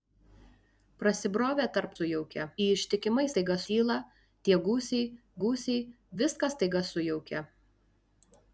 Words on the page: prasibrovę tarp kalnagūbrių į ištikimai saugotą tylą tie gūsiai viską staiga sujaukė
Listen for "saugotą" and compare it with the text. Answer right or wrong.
wrong